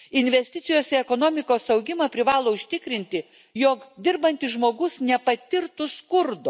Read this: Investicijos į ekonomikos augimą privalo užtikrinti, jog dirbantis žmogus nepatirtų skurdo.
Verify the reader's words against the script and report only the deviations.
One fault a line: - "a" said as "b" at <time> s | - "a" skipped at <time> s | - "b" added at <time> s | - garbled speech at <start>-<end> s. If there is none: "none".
none